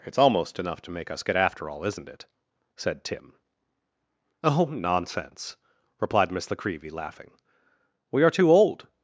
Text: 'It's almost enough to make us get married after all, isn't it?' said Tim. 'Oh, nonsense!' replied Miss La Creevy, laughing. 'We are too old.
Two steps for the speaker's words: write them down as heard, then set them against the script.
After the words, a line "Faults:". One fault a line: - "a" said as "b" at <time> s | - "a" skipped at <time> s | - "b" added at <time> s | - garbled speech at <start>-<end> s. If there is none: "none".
'It's almost enough to make us get after all, isn't it?' said Tim. 'Oh, nonsense!' replied Miss La Creevy, laughing. 'We are too old.
Faults:
- "married" skipped at 1.4 s